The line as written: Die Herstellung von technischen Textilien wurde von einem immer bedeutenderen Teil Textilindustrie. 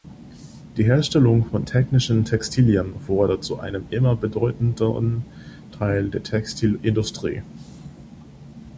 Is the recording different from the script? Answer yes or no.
yes